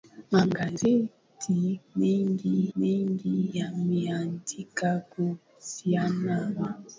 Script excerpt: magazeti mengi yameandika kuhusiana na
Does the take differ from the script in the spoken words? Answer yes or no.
yes